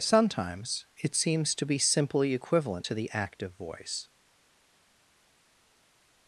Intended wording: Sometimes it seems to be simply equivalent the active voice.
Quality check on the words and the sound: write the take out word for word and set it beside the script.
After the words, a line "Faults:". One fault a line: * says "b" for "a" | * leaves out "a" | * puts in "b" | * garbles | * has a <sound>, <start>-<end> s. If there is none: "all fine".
Sometimes it seems to be simply equivalent to the active voice.
Faults:
* puts in "to"